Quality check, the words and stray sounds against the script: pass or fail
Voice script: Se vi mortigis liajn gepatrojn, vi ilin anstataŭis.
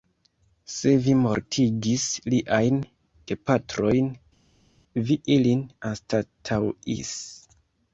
pass